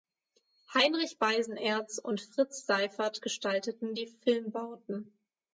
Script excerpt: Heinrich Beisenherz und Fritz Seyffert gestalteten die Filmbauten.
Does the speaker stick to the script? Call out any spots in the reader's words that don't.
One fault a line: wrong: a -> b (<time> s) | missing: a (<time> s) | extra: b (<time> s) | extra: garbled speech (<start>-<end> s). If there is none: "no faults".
no faults